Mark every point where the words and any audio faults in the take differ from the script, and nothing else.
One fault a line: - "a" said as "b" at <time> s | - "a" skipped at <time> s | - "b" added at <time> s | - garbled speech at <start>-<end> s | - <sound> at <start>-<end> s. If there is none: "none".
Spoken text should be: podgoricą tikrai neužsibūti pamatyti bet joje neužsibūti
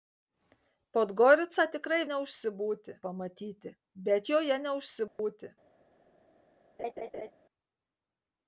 - dropout at 5.1-5.2 s
- laugh at 6.8-7.3 s